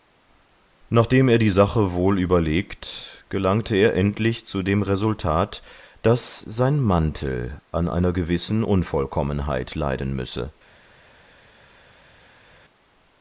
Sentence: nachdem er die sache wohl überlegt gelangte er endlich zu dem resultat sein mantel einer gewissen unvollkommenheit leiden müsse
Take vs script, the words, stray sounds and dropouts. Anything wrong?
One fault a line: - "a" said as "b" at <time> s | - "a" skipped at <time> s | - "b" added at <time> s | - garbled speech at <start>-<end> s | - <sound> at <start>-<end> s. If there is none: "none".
- "daß" added at 6.0 s
- "an" added at 7.7 s